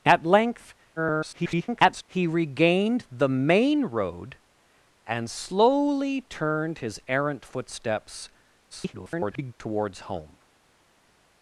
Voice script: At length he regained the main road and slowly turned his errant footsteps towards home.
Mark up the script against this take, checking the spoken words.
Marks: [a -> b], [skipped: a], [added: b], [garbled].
At length [garbled] he regained the main road and slowly turned his errant footsteps [garbled] towards home.